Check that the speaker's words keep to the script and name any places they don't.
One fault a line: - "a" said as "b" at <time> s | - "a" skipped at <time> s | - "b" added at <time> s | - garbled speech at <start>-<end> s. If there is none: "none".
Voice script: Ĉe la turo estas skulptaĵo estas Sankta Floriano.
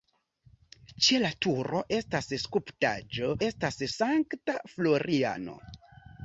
none